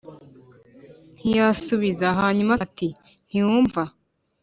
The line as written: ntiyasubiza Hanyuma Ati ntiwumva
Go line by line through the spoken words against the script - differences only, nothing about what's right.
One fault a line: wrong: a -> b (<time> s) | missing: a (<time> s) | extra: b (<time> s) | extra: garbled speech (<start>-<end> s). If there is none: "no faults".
no faults